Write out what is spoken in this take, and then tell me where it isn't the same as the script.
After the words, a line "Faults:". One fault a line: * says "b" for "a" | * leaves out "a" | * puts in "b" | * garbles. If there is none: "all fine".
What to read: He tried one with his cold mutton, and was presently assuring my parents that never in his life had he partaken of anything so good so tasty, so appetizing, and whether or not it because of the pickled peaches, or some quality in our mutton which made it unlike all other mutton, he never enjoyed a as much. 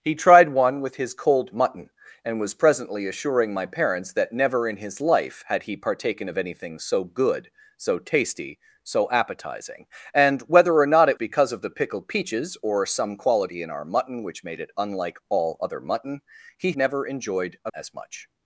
He tried one with his cold mutton, and was presently assuring my parents that never in his life had he partaken of anything so good so tasty, so appetizing, and whether or not it because of the pickled peaches, or some quality in our mutton which made it unlike all other mutton, he never enjoyed a as much.
Faults:
all fine